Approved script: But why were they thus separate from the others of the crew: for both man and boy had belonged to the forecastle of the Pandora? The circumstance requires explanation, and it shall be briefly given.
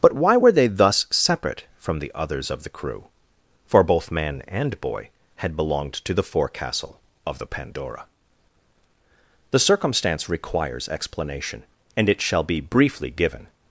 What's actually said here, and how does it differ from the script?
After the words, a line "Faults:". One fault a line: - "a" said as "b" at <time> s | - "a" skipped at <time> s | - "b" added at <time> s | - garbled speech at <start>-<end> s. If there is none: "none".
But why were they thus separate from the others of the crew: for both man and boy had belonged to the forecastle of the Pandora? The circumstance requires explanation, and it shall be briefly given.
Faults:
none